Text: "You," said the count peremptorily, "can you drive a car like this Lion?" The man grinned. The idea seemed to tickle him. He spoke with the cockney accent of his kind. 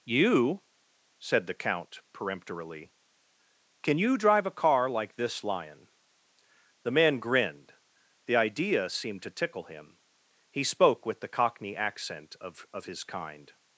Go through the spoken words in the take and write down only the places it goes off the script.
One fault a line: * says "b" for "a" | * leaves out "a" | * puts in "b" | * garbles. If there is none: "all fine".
* puts in "of"